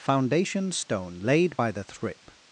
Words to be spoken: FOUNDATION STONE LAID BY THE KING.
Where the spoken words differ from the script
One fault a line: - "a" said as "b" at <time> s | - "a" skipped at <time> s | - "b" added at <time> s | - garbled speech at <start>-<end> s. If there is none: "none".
- "KING" said as "Thrip" at 1.8 s